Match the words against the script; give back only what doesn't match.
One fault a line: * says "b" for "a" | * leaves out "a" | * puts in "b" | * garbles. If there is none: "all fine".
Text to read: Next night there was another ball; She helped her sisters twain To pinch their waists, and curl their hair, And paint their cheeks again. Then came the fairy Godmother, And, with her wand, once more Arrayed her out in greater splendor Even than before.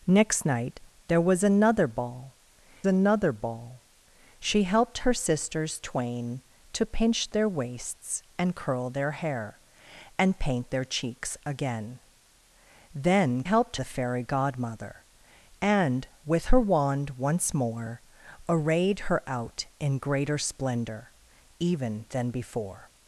* puts in "another ball"
* says "helped" for "came"